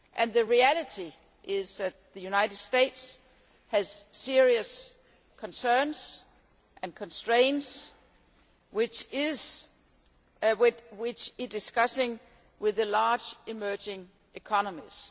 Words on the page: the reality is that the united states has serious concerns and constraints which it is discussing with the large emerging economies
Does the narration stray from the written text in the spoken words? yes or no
yes